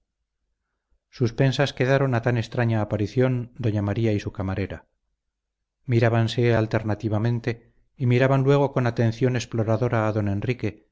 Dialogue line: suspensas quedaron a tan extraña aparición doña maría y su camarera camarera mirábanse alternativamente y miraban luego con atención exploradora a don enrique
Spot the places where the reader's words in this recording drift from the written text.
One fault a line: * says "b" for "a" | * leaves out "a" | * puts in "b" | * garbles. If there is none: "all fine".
* leaves out "camarera"